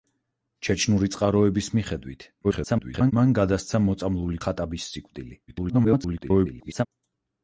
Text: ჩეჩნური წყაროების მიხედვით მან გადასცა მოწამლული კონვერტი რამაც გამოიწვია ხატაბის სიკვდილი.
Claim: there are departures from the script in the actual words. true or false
true